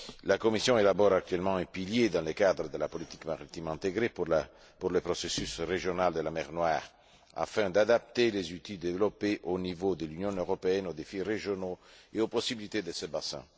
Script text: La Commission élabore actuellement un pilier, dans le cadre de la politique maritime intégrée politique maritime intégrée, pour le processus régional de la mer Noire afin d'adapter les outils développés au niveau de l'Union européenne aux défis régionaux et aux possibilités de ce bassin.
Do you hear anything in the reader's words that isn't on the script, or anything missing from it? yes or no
yes